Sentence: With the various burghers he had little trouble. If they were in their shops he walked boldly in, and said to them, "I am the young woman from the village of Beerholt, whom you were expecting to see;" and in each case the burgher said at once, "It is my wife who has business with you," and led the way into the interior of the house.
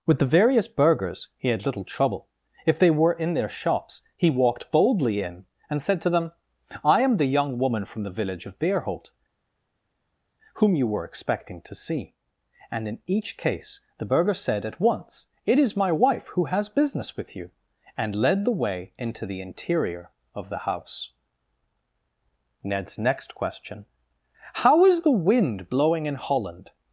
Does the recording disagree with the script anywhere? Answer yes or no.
yes